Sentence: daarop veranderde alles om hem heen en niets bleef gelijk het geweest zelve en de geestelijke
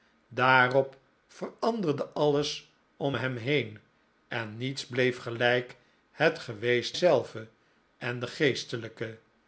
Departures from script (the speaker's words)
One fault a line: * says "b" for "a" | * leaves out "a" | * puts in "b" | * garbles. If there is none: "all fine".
all fine